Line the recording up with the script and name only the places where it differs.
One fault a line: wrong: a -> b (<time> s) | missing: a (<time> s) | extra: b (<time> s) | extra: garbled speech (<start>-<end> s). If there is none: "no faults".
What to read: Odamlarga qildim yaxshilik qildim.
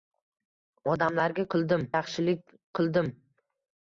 no faults